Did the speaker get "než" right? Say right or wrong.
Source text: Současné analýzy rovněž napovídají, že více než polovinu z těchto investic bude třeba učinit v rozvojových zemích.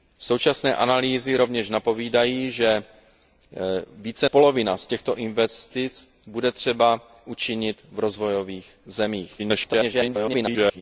wrong